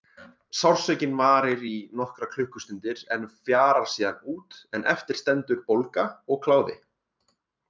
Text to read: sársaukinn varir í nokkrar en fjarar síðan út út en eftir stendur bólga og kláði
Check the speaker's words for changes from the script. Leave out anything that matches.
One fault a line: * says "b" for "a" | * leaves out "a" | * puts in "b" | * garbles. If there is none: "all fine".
* puts in "klukkustundir"
* leaves out "út"